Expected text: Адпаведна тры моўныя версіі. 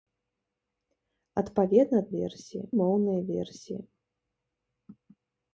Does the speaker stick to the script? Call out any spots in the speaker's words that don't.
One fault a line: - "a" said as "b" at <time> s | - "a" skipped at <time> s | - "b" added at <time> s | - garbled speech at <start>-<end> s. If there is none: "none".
- "тры" said as "версіі" at 2.2 s